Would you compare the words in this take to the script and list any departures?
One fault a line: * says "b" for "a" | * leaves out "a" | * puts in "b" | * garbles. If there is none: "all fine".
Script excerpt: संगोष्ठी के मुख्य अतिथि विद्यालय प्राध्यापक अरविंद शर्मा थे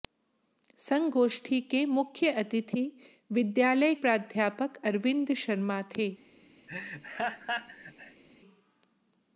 all fine